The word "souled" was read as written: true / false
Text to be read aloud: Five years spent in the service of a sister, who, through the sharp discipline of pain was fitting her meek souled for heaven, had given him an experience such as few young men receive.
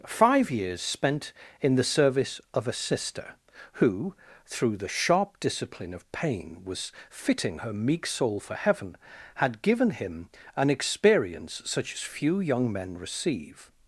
false